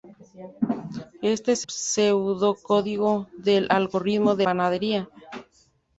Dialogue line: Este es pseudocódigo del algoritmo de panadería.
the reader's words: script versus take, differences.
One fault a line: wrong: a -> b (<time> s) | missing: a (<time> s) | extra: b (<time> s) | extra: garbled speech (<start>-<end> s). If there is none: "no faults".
no faults